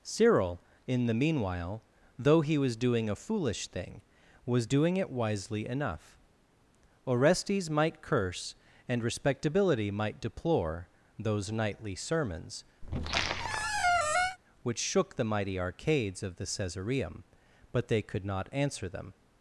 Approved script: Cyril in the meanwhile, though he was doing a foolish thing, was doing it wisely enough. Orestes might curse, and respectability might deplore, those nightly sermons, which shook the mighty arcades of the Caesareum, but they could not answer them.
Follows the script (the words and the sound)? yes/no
no